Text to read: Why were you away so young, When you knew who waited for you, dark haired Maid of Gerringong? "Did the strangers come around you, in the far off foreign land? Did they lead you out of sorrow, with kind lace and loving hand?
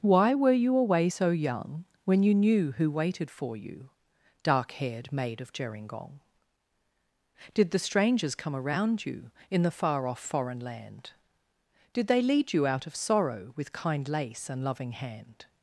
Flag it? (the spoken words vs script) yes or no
no